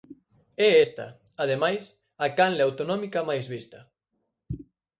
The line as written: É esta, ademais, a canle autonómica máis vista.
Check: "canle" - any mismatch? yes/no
no